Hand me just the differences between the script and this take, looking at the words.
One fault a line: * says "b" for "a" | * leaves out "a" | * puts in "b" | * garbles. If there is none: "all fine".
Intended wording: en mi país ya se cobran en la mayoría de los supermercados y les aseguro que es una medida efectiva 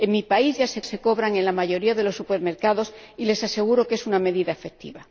* puts in "se"